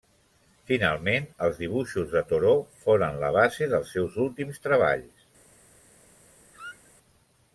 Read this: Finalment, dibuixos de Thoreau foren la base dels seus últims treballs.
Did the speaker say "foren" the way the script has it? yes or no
yes